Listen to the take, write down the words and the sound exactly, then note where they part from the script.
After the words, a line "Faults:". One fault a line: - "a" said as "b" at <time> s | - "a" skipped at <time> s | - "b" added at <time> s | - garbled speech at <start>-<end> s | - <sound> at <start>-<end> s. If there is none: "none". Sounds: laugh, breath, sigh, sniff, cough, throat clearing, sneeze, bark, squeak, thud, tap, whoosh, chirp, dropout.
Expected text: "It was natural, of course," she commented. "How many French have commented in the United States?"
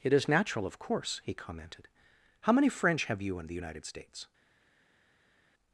"It is natural, of course," he commented. "How many French have you in the United States?"
Faults:
- "was" said as "is" at 0.1 s
- "she" said as "he" at 1.2 s
- "commented" said as "you" at 3.2 s